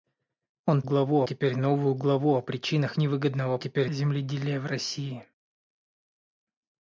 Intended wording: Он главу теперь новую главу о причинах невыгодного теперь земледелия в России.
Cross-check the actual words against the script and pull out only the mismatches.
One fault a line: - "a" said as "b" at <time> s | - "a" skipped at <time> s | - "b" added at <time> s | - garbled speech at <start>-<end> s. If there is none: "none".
none